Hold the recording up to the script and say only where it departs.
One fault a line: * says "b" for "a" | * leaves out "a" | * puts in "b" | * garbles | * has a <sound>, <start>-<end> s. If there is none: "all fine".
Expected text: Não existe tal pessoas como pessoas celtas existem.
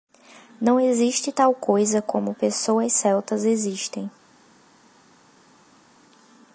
* says "coisa" for "pessoas"